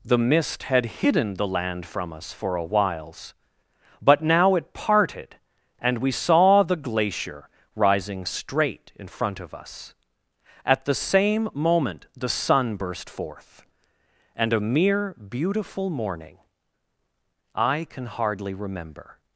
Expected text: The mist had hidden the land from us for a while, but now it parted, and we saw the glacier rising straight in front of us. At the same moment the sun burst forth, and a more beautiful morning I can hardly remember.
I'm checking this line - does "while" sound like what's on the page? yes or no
no